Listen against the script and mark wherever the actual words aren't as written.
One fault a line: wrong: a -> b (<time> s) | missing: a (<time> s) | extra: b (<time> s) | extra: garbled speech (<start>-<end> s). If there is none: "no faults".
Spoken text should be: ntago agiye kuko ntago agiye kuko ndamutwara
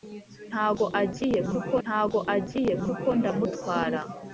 no faults